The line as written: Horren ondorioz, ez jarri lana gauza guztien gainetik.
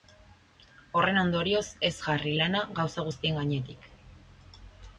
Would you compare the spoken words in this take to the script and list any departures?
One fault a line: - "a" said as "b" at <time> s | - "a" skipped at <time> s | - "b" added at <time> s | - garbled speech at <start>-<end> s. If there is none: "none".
none